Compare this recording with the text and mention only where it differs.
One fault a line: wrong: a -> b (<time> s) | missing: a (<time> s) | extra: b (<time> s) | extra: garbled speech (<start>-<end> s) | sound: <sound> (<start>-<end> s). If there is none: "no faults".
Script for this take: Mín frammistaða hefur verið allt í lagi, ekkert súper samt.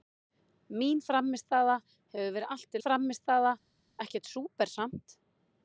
wrong: lagi -> frammistaða (2.8 s)